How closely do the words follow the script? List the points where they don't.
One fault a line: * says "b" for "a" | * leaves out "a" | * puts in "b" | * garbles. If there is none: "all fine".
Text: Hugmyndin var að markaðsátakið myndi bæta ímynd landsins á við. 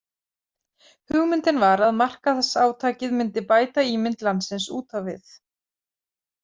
* puts in "út"